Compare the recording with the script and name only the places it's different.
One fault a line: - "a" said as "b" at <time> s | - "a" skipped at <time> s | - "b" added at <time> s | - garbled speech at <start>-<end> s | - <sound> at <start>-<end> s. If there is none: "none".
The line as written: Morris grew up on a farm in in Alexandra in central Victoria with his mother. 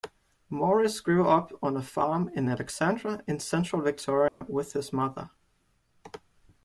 - "in" skipped at 2.5 s
- dropout at 4.3-4.4 s